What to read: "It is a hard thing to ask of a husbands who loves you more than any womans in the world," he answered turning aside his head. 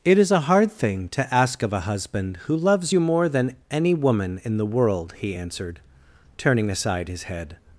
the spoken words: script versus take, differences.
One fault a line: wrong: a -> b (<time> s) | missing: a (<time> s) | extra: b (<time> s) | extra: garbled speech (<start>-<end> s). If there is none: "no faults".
wrong: husbands -> husband (1.8 s)
wrong: womans -> woman (3.9 s)